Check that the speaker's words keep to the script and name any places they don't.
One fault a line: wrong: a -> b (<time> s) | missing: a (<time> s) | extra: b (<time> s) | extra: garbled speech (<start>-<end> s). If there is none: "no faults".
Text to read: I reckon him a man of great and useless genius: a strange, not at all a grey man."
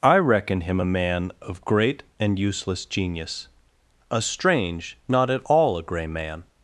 no faults